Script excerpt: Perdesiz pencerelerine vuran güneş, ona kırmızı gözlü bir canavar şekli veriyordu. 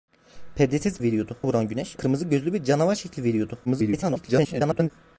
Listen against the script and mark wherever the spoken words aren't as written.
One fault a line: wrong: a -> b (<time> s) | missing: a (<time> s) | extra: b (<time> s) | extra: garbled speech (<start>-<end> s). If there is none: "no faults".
wrong: pencerelerine -> veriyordu (1.0 s)
missing: ona (2.0 s)
extra: garbled speech (3.7-4.9 s)